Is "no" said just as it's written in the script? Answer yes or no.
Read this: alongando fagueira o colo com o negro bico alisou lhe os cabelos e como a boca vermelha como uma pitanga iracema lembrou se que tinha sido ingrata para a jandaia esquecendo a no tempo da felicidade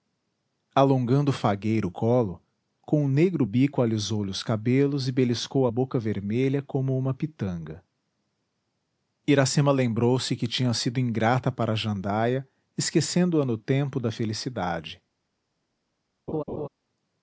yes